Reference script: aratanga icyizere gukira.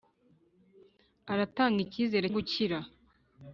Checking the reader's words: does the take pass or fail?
pass